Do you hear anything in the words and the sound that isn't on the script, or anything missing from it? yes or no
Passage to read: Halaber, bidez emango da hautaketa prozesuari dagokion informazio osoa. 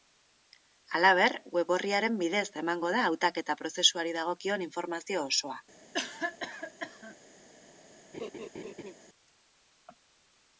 yes